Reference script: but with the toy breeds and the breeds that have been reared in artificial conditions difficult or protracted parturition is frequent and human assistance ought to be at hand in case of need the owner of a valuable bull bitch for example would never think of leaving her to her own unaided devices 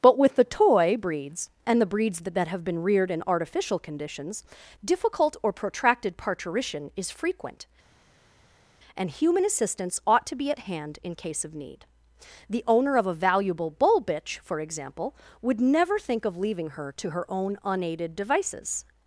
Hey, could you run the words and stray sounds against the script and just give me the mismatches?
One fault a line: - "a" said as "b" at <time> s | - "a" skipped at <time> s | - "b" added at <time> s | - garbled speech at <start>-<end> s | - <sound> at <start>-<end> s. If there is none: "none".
- "that" added at 2.3 s